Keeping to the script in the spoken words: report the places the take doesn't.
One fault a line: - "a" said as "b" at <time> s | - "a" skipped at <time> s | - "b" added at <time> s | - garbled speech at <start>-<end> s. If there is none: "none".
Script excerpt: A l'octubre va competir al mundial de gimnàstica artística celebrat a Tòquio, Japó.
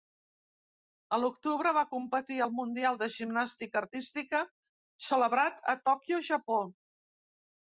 none